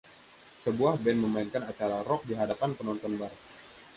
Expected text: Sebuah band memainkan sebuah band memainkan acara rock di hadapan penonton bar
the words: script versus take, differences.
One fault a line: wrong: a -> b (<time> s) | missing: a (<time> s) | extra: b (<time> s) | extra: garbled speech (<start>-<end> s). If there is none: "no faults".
missing: sebuah band memainkan (1.6 s)